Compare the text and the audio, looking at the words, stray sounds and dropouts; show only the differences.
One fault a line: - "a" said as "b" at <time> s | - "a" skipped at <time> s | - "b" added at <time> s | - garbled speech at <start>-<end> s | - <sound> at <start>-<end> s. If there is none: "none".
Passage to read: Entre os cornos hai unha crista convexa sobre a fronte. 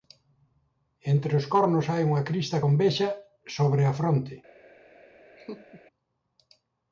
- laugh at 5.4-5.8 s